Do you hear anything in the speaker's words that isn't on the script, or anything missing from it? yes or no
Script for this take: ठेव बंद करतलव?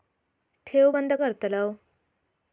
no